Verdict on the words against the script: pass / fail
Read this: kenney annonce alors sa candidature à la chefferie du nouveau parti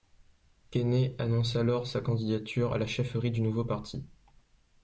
pass